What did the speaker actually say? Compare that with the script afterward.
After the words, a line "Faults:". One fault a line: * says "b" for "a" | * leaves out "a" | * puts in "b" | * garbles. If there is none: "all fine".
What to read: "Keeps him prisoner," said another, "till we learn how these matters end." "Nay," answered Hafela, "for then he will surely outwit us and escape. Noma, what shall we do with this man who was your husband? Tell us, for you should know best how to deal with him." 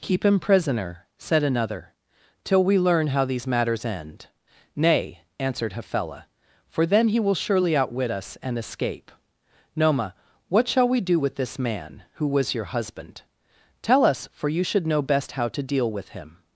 "Keep him prisoner," said another, "till we learn how these matters end." "Nay," answered Hafela, "for then he will surely outwit us and escape. Noma, what shall we do with this man who was your husband? Tell us, for you should know best how to deal with him."
Faults:
* says "Keep" for "Keeps"